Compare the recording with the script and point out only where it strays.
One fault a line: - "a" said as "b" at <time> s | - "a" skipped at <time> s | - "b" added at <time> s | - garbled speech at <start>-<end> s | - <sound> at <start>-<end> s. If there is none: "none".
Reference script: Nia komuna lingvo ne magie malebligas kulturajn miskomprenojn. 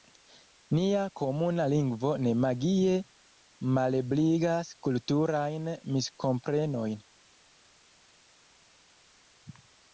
none